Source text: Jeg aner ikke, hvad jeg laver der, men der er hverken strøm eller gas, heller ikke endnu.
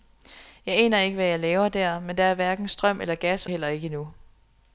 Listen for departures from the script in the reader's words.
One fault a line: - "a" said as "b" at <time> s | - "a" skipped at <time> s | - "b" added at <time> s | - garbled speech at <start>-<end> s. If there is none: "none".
none